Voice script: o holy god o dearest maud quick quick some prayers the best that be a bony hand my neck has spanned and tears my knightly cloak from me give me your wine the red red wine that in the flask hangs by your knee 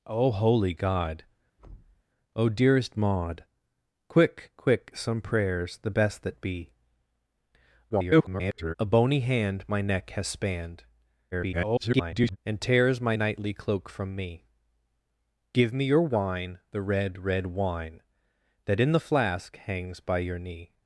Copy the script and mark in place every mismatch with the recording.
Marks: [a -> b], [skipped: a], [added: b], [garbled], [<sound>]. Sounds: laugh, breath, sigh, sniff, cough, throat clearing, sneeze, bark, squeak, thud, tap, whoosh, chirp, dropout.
o holy god [thud] o dearest maud quick quick some prayers the best that be [garbled] a bony hand my neck has spanned [garbled] and tears my knightly cloak from me give me your wine the red red wine that in the flask hangs by your knee